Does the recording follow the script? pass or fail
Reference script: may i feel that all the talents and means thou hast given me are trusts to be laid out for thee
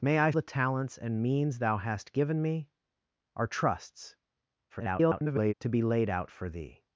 fail